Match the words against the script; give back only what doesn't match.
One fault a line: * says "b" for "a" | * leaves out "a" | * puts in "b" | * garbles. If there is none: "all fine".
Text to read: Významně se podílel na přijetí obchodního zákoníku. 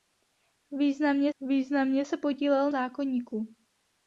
* puts in "významně"
* leaves out "na přijetí obchodního"